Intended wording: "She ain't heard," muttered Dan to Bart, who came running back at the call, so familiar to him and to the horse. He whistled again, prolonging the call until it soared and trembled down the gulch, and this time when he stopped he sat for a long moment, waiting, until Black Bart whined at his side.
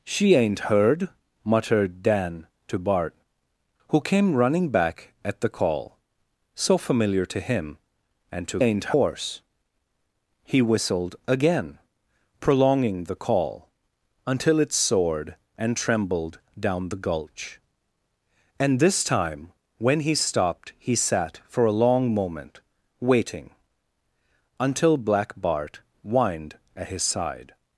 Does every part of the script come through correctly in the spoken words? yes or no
no